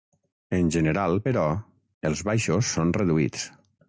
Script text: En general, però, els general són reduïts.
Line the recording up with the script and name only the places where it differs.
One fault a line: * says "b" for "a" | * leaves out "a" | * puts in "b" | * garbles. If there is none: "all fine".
* says "baixos" for "general"